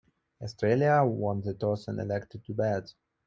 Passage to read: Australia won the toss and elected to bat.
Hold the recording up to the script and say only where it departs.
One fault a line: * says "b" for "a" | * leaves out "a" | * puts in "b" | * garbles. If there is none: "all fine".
all fine